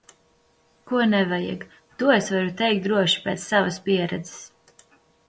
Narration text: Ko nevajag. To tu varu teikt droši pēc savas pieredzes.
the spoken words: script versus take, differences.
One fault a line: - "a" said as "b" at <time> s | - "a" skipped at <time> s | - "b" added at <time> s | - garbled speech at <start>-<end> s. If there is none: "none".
- "tu" said as "es" at 2.1 s